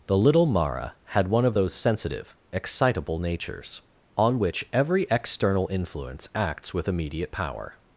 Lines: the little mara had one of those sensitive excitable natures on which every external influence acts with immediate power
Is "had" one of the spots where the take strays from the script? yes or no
no